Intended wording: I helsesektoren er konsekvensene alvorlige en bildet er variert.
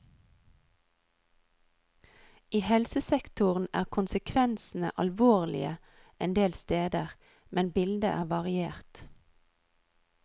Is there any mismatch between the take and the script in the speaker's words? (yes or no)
yes